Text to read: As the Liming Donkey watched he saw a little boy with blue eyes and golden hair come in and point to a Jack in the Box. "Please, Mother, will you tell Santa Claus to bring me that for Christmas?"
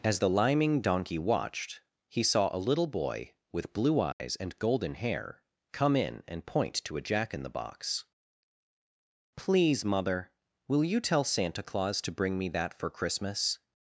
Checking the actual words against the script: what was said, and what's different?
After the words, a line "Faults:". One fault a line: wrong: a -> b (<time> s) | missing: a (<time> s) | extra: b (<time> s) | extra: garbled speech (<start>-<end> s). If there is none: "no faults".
As the Liming Donkey watched he saw a little boy with blue eyes and golden hair come in and point to a Jack in the Box. "Please, Mother, will you tell Santa Claus to bring me that for Christmas?"
Faults:
no faults